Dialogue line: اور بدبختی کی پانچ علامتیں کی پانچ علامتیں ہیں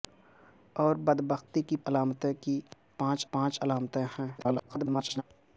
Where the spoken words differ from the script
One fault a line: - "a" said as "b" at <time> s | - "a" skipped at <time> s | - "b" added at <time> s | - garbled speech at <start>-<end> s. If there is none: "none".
- "پانچ" skipped at 1.8 s
- "پانچ" added at 3.3 s
- garbled speech at 4.4-5.2 s